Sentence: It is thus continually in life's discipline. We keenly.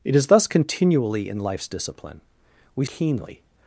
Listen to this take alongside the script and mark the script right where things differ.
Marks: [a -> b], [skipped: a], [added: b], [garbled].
It is thus continually in life's discipline. We keenly.